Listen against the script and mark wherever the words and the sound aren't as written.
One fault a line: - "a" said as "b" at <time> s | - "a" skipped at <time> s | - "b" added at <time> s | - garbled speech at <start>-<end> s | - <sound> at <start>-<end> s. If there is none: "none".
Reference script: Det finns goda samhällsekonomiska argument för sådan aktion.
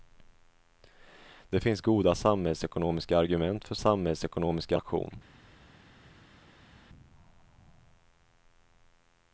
- "sådan" said as "samhällsekonomiska" at 3.8 s